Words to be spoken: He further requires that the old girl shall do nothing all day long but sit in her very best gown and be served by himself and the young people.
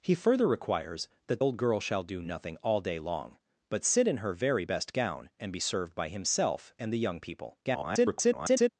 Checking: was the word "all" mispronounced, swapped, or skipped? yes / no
no